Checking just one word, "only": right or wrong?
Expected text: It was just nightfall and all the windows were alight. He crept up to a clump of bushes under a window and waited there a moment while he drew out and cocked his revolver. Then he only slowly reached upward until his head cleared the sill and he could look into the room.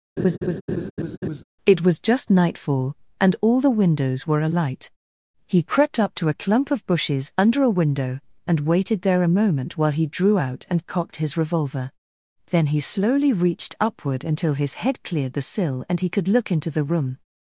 wrong